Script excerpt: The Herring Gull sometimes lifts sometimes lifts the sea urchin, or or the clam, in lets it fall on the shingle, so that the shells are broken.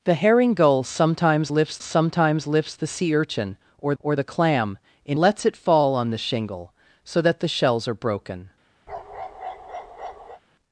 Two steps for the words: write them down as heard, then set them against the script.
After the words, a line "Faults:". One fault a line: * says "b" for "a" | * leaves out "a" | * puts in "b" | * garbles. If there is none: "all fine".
The Herring Gull sometimes lifts sometimes lifts the sea urchin, or or the clam, in lets it fall on the shingle, so that the shells are broken.
Faults:
all fine